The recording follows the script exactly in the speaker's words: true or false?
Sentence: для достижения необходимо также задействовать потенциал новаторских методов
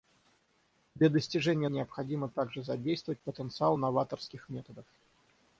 true